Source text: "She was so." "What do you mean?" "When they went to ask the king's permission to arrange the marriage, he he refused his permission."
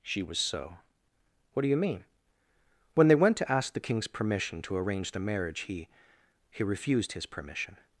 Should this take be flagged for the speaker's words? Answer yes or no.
no